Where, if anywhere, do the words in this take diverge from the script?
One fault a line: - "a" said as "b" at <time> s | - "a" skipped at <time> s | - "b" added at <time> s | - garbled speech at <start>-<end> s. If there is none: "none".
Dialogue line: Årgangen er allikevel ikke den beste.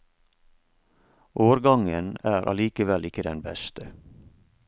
none